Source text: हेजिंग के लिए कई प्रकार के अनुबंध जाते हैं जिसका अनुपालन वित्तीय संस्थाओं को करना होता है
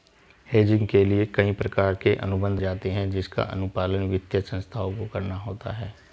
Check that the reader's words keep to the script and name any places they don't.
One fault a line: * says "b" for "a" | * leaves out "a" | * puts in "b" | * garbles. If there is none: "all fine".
all fine